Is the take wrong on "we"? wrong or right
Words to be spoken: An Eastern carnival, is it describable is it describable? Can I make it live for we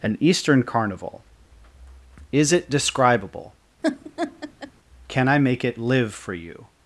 wrong